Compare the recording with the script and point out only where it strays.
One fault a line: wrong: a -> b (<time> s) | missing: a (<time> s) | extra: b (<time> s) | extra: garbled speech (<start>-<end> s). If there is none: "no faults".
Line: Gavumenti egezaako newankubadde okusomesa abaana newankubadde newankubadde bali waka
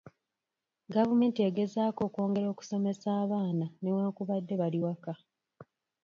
wrong: newankubadde -> okwongera (2.1 s)
missing: newankubadde (4.5 s)